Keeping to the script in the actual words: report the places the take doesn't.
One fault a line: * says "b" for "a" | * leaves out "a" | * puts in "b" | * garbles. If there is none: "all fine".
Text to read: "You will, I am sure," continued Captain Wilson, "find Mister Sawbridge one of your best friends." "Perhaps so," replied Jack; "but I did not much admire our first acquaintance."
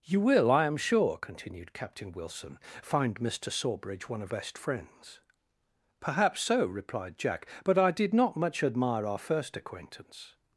* leaves out "your"